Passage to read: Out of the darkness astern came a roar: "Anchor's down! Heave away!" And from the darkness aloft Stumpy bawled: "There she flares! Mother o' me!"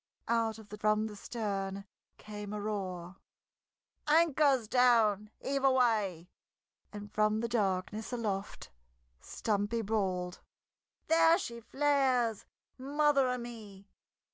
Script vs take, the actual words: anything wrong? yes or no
yes